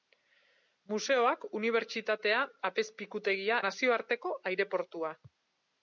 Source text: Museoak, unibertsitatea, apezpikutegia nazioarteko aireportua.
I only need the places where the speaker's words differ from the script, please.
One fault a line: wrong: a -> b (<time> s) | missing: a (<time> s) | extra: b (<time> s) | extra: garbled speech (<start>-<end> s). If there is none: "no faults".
no faults